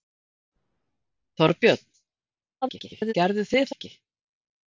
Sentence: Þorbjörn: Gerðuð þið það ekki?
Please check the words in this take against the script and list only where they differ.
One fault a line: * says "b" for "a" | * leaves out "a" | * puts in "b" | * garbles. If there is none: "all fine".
* garbles
* leaves out "það"